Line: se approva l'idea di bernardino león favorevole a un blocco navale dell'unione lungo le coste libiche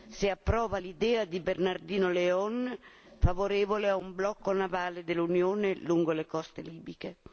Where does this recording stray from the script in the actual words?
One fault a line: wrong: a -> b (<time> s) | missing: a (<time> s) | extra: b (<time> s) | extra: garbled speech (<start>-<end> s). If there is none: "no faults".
no faults